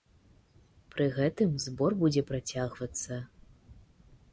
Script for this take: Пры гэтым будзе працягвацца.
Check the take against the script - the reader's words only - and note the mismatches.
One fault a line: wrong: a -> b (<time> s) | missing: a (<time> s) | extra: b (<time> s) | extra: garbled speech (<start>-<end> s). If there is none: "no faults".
extra: збор (1.7 s)